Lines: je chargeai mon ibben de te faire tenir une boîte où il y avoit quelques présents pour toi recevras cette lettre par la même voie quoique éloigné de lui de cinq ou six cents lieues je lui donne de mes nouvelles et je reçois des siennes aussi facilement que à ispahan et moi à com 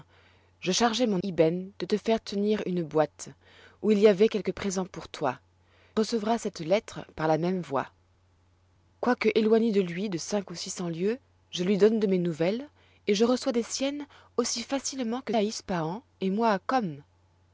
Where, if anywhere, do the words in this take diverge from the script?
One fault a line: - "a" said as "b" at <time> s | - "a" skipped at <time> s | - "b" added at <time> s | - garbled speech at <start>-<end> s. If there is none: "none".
none